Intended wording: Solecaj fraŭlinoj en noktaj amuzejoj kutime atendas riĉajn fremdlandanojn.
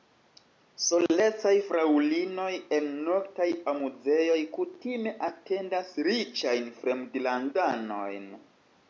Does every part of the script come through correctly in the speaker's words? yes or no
yes